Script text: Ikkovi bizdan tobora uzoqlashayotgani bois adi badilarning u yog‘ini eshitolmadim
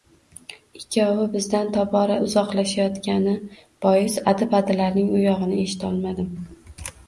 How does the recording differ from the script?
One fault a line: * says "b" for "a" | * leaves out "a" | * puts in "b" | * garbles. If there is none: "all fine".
all fine